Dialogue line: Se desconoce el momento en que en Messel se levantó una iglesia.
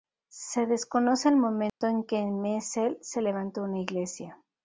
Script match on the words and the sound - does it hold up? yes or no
no